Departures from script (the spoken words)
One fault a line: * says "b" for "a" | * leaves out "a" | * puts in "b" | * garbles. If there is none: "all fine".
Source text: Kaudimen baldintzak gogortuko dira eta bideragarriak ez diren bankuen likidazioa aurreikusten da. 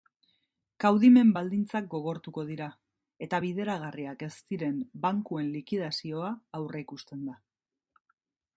all fine